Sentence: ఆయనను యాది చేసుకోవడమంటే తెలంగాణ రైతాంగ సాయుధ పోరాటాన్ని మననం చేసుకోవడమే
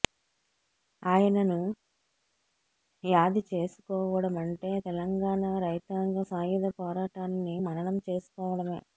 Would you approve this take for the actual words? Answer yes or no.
yes